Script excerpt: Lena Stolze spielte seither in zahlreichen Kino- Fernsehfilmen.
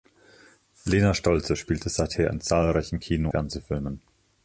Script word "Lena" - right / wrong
right